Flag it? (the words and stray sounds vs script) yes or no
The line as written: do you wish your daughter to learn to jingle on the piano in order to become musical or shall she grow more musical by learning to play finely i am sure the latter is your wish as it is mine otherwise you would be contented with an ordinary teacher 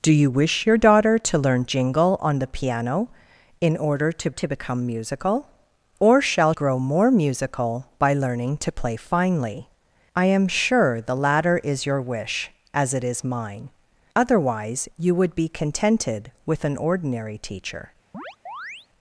yes